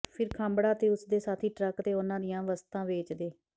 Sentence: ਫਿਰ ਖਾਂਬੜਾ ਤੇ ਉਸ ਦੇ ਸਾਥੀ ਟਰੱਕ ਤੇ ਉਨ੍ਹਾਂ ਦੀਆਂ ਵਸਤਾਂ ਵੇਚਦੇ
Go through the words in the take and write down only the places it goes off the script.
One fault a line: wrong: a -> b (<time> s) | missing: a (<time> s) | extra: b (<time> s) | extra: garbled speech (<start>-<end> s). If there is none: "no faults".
no faults